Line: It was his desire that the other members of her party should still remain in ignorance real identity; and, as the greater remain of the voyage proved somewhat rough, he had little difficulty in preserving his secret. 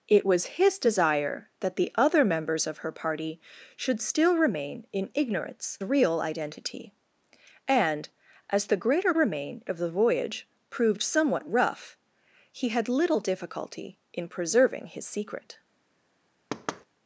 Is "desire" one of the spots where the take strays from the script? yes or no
no